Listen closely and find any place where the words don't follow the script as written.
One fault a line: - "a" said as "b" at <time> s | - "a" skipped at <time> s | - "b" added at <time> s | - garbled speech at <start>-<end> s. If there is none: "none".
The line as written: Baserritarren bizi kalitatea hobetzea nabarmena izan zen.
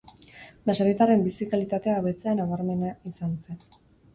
none